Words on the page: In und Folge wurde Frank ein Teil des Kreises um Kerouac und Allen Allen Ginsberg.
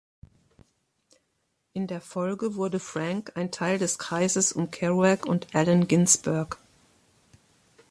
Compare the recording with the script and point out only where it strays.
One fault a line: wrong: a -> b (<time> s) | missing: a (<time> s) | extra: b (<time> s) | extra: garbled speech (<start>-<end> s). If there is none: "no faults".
wrong: und -> der (1.9 s)
missing: Allen (5.9 s)